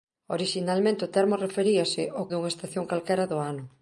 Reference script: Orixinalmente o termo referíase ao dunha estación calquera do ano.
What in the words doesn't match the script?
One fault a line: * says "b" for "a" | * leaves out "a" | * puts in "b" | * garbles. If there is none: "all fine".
all fine